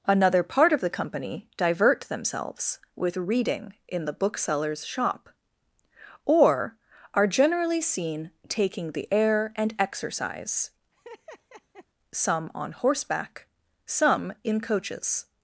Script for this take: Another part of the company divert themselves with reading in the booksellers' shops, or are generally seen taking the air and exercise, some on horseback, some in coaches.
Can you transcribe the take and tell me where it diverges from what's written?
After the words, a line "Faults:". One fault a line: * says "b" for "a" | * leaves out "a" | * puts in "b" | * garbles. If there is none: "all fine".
Another part of the company divert themselves with reading in the booksellers' shop, or are generally seen taking the air and exercise, some on horseback, some in coaches.
Faults:
* says "shop" for "shops"